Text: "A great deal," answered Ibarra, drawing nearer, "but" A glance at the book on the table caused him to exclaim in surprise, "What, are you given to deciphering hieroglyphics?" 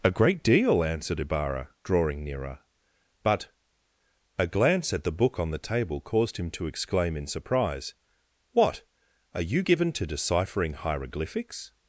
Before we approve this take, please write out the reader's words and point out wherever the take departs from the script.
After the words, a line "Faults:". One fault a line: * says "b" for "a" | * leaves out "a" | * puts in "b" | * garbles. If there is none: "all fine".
"A great deal," answered Ibarra, drawing nearer, "but" A glance at the book on the table caused him to exclaim in surprise, "What, are you given to deciphering hieroglyphics?"
Faults:
all fine